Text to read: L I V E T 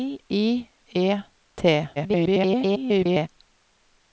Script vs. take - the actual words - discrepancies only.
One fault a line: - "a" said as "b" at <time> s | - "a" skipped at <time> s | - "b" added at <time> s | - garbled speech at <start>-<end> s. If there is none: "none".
- "V" skipped at 0.7 s
- garbled speech at 2.0-3.3 s